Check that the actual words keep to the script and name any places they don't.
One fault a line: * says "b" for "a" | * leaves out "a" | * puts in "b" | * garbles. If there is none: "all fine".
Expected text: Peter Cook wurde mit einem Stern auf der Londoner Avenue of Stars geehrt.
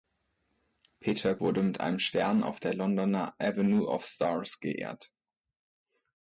* leaves out "Cook"